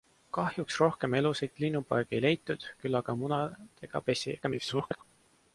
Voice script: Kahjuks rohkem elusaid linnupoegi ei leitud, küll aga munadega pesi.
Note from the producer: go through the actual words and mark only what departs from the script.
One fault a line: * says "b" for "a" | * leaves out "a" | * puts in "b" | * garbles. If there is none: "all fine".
* garbles